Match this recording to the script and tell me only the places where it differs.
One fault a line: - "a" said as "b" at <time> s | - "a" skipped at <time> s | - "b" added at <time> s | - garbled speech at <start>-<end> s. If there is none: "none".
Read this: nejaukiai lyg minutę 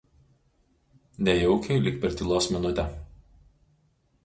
- "per tylos" added at 2.0 s